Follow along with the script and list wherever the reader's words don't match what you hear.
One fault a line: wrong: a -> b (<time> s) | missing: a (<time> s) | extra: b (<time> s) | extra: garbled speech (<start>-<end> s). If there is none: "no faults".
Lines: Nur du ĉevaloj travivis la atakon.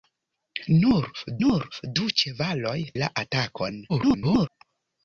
extra: nur (1.4 s)
missing: travivis (2.8 s)
extra: garbled speech (3.9-4.5 s)